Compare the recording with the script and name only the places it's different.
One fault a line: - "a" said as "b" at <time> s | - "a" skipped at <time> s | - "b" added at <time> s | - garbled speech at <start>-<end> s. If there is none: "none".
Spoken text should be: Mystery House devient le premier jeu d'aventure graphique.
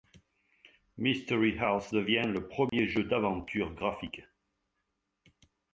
none